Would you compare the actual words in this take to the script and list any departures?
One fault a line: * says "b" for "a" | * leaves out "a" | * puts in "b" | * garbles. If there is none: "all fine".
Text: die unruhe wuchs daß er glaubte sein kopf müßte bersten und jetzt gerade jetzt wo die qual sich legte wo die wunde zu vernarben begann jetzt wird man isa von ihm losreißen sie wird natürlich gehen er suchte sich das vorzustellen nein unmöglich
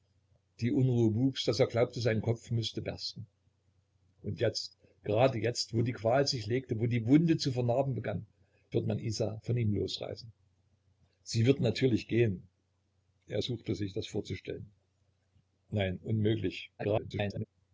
* leaves out "jetzt"
* garbles